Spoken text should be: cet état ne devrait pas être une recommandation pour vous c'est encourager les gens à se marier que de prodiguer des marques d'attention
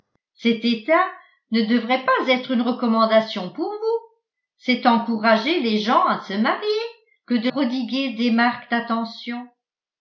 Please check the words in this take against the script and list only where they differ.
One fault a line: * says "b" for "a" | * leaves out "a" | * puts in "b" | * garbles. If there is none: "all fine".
all fine